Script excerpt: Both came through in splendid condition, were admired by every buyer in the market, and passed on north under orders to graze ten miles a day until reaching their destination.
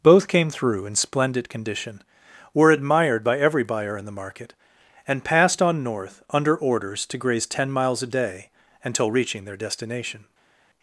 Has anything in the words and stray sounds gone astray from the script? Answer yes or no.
no